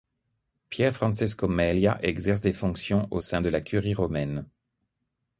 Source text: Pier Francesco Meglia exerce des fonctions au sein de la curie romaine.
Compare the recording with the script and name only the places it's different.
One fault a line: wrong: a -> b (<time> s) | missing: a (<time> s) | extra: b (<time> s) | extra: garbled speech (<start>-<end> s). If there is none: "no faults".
no faults